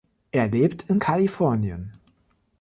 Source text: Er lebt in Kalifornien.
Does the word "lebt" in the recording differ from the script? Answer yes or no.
no